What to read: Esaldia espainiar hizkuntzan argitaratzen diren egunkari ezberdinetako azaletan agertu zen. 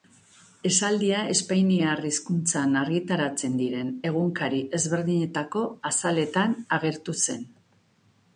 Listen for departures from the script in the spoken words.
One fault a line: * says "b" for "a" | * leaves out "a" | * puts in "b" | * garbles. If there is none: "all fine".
all fine